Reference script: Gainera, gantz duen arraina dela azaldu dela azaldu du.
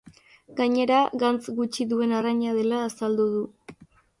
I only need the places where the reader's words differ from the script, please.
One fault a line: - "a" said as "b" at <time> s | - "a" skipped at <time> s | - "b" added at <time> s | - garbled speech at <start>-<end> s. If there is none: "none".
- "gutxi" added at 1.6 s
- "dela azaldu" skipped at 3.3 s